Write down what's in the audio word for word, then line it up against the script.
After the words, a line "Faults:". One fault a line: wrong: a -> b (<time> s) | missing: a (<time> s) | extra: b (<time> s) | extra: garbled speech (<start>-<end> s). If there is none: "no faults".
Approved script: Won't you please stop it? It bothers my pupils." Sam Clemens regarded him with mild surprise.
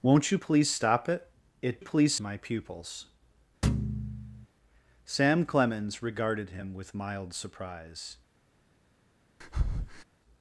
Won't you please stop it? It please my pupils." Sam Clemens regarded him with mild surprise.
Faults:
wrong: bothers -> please (1.8 s)